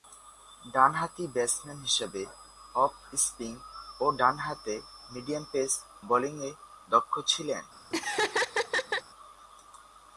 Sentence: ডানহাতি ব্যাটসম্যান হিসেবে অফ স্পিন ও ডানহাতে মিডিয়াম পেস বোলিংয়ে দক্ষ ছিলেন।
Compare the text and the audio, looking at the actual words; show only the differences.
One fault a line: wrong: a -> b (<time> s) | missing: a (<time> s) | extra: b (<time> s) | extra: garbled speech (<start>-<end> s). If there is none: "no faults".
no faults